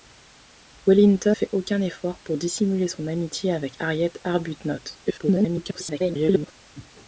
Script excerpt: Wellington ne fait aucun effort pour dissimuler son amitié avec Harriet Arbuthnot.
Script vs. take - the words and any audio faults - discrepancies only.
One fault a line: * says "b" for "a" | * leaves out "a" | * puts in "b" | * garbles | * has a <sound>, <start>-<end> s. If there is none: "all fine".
* leaves out "ne"
* garbles